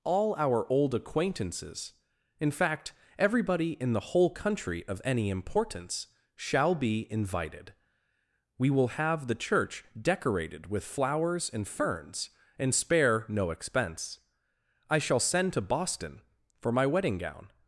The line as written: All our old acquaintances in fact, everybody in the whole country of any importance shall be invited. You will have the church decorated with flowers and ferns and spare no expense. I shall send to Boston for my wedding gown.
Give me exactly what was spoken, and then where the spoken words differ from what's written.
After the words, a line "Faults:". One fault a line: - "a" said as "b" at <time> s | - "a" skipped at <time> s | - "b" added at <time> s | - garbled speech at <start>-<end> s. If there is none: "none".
All our old acquaintances in fact, everybody in the whole country of any importance shall be invited. We will have the church decorated with flowers and ferns and spare no expense. I shall send to Boston for my wedding gown.
Faults:
- "You" said as "We" at 8.6 s